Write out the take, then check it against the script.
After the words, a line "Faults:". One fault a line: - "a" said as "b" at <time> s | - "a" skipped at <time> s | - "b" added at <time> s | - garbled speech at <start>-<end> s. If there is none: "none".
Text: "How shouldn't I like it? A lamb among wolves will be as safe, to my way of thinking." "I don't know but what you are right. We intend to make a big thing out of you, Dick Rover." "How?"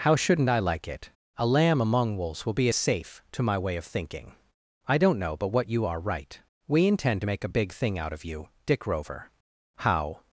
"How shouldn't I like it? A lamb among wolves will be as safe, to my way of thinking." "I don't know but what you are right. We intend to make a big thing out of you, Dick Rover." "How?"
Faults:
none